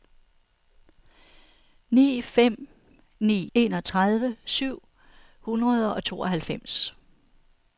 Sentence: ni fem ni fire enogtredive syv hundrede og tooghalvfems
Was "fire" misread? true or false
true